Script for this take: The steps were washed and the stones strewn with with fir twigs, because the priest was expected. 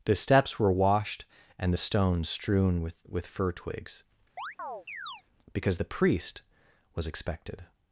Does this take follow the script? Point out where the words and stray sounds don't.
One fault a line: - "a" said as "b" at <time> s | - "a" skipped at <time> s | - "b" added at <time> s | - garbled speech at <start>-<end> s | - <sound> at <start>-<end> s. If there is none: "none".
- chirp at 4.4-5.2 s